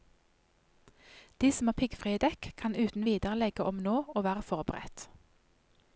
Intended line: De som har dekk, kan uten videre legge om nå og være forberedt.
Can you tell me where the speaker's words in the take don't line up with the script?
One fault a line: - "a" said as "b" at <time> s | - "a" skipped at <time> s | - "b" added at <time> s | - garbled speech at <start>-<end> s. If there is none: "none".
- "piggfrie" added at 1.8 s